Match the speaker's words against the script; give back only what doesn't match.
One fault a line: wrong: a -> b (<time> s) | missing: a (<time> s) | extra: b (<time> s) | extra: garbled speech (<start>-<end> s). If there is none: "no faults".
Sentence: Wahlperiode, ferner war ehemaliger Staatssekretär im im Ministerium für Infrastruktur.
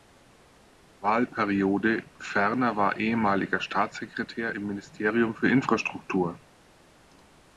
missing: im (4.7 s)